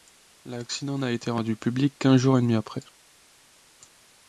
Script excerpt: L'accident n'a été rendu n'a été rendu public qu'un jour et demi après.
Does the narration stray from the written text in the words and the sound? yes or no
yes